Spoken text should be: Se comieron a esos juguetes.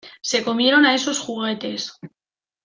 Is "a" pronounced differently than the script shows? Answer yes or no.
no